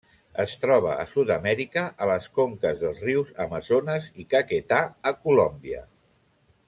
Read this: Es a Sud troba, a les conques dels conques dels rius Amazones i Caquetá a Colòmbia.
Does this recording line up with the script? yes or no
no